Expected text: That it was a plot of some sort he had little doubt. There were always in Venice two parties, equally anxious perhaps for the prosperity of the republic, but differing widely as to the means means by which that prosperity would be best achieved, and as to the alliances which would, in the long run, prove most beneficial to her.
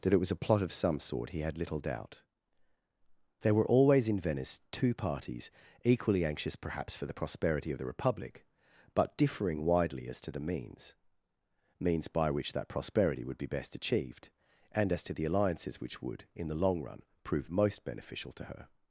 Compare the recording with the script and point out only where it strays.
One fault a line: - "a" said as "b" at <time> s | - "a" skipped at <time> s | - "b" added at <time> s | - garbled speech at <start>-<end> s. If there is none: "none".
none